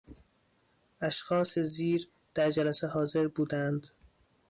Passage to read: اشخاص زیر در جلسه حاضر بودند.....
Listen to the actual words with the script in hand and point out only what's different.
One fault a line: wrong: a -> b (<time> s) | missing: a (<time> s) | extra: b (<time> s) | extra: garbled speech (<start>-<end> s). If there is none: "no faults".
no faults